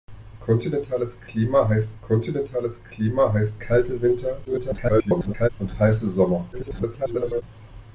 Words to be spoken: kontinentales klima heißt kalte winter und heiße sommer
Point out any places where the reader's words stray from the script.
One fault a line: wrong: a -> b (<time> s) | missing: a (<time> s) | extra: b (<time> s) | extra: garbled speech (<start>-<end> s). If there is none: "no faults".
extra: kontinentales klima heißt (2.0 s)
extra: garbled speech (4.4-5.5 s)
extra: garbled speech (6.5-7.4 s)